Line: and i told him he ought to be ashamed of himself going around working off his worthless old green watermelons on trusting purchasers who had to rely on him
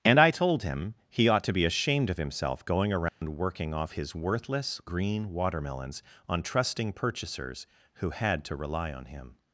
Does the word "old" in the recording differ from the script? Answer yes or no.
yes